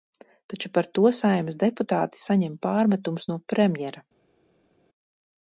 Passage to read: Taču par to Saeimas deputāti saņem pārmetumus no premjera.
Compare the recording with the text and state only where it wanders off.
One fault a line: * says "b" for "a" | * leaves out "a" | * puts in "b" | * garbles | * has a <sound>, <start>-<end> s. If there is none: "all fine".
all fine